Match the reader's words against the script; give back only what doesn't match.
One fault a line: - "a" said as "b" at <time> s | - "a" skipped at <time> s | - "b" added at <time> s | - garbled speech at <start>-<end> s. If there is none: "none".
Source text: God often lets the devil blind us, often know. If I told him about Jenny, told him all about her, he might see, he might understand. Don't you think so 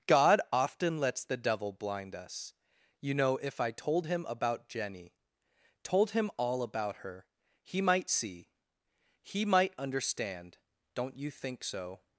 - "often" said as "you" at 3.0 s